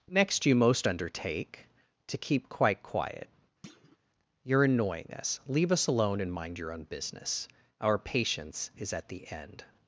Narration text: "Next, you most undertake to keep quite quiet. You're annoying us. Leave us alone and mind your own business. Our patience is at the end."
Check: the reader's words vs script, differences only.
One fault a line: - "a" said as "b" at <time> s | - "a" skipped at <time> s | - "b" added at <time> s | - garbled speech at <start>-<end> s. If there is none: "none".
none